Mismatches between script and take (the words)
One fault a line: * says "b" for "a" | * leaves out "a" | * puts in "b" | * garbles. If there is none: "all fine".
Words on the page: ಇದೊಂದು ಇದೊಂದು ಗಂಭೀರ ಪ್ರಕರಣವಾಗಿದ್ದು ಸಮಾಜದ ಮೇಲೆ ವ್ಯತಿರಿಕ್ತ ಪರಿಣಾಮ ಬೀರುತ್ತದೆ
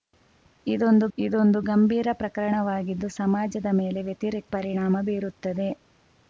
all fine